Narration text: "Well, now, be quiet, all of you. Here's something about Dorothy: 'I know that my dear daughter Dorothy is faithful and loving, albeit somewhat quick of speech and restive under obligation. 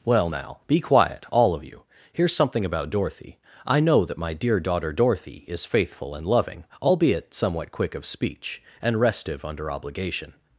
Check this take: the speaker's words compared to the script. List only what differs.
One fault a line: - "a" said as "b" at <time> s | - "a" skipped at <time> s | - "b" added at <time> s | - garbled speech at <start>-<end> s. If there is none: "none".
none